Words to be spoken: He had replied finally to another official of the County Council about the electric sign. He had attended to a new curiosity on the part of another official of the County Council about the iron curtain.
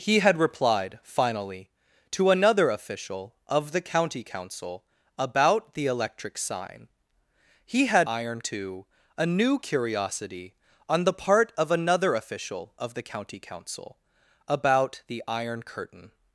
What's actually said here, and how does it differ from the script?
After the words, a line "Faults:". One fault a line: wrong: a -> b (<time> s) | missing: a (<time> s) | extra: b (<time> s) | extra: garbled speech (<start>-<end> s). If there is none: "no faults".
He had replied finally to another official of the County Council about the electric sign. He had iron to a new curiosity on the part of another official of the County Council about the iron curtain.
Faults:
wrong: attended -> iron (8.0 s)